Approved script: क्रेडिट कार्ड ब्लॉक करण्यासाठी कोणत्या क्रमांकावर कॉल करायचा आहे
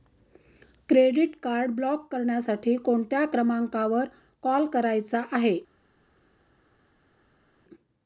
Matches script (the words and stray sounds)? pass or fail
pass